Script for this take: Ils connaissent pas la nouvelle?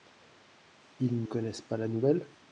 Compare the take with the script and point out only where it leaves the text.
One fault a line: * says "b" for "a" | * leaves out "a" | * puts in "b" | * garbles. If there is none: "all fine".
all fine